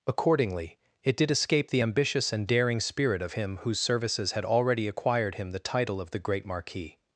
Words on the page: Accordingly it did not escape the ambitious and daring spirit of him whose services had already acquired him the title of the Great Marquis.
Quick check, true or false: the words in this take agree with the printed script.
false